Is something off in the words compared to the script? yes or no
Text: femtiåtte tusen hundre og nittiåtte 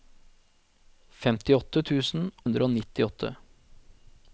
no